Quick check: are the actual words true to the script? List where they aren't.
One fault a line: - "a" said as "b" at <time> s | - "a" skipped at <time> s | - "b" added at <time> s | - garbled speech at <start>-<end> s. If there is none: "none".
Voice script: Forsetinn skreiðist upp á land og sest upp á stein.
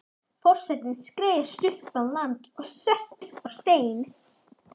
none